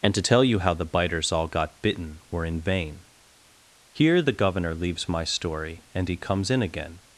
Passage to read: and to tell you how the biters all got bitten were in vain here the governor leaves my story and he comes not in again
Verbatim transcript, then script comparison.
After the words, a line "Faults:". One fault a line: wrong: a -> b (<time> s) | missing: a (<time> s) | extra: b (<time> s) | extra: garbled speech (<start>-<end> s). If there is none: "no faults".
and to tell you how the biters all got bitten were in vain here the governor leaves my story and he comes in again
Faults:
missing: not (6.5 s)